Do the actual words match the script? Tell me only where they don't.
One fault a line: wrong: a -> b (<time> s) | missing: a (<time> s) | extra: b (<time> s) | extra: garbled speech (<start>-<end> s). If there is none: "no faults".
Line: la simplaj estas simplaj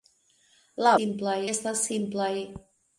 no faults